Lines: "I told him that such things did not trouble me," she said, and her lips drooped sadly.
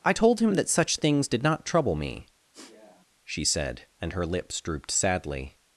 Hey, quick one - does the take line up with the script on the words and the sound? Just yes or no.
no